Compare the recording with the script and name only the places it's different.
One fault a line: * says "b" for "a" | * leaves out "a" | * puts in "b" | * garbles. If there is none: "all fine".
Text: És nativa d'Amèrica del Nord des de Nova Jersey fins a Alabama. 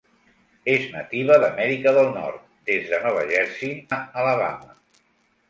* leaves out "fins"